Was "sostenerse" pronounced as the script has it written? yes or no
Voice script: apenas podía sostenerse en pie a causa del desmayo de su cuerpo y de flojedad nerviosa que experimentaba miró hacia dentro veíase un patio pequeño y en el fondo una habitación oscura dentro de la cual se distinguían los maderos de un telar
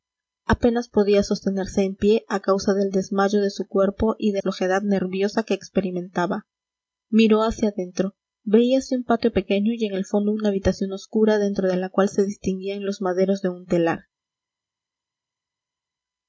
yes